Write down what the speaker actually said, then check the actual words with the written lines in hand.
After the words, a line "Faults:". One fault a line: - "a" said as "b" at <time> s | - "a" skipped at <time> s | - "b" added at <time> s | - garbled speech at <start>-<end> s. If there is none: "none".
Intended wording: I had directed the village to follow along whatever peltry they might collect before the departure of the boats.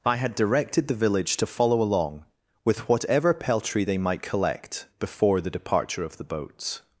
I had directed the village to follow along with whatever peltry they might collect before the departure of the boats.
Faults:
- "with" added at 2.6 s